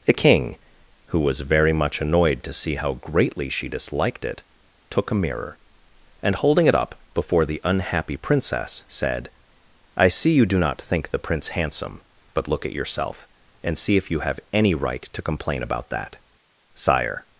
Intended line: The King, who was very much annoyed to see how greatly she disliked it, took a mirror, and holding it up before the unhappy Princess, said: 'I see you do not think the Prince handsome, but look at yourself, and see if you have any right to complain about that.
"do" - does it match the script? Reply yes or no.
yes